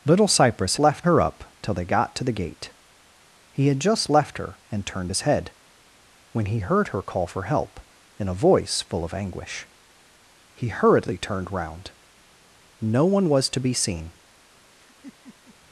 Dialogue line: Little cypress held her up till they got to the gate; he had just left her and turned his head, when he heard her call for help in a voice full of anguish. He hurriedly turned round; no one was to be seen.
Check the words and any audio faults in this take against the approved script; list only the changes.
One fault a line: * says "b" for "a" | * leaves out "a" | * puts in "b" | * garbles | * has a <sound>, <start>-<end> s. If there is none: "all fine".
* says "left" for "held"
* has a laugh, 14.8-15.6 s